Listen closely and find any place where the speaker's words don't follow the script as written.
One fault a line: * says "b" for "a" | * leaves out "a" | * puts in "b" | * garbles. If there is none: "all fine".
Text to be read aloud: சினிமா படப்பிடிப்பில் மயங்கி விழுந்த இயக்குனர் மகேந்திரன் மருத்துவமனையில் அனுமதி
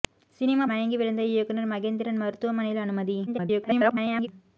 * leaves out "படப்பிடிப்பில்"
* garbles